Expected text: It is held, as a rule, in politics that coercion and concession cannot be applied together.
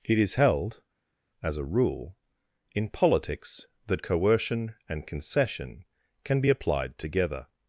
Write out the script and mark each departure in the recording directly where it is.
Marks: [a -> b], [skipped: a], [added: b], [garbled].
It is held, as a rule, in politics that coercion and concession [cannot -> can] be applied together.